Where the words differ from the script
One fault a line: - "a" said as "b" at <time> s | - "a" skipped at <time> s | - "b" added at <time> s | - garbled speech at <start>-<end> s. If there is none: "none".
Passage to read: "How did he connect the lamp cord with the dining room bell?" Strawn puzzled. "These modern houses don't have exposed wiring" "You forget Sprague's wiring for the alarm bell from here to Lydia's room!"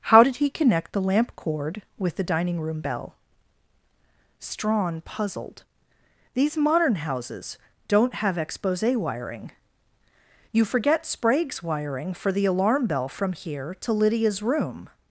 - "exposed" said as "expose" at 8.4 s